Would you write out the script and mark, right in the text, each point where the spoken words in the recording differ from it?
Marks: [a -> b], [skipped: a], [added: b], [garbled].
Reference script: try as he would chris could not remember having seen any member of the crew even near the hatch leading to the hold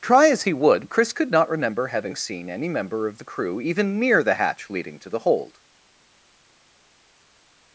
try as he would chris could not remember having seen any member of the crew even near the hatch leading to the hold